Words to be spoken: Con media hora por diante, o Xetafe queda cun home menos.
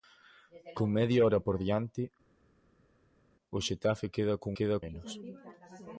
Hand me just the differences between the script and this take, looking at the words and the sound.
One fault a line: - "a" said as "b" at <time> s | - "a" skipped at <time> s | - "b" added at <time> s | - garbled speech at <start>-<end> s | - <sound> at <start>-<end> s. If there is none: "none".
- "home" said as "queda" at 4.6 s